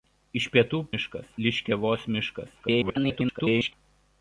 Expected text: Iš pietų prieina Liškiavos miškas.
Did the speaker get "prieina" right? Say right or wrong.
wrong